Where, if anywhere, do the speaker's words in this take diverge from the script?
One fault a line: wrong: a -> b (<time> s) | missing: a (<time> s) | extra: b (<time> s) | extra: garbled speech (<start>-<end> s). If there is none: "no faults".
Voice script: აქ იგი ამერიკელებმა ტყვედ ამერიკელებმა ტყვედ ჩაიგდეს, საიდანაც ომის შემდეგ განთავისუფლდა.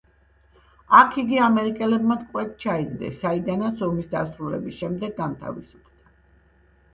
missing: ამერიკელებმა ტყვედ (2.5 s)
extra: დასრულების (4.1 s)